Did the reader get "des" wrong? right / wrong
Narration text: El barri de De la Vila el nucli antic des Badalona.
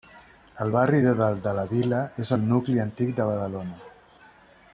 wrong